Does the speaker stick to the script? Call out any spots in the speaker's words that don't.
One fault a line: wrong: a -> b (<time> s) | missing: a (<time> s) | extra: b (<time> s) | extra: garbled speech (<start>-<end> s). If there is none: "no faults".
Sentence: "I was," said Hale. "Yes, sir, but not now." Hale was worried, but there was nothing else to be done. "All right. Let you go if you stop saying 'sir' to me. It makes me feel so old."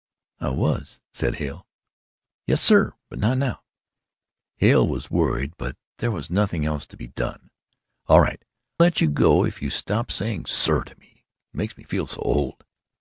no faults